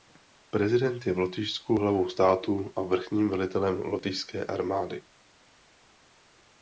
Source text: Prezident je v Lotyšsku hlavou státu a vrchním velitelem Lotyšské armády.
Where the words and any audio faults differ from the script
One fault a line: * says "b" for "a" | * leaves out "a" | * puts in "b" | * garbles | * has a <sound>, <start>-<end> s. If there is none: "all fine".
all fine